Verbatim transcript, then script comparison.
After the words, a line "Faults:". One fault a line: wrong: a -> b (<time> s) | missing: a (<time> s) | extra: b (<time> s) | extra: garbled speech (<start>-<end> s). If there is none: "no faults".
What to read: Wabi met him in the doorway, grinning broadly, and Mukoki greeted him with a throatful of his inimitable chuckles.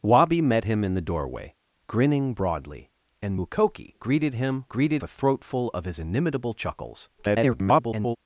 Wabi met him in the doorway, grinning broadly, and Mukoki greeted him greeted a throatful of his inimitable chuckles. [garbled]
Faults:
wrong: with -> greeted (4.7 s)
extra: garbled speech (7.2-8.2 s)